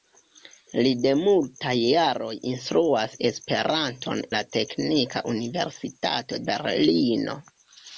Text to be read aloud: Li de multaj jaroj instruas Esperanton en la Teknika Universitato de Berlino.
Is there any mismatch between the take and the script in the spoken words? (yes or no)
yes